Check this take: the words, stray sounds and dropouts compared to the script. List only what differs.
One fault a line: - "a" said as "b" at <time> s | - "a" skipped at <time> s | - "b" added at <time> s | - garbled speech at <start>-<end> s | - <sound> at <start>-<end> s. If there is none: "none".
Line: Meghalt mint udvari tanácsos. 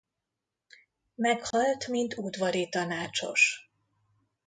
- dropout at 1.5-1.5 s